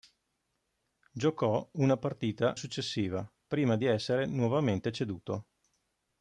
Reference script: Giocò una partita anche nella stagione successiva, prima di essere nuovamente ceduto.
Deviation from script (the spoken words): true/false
true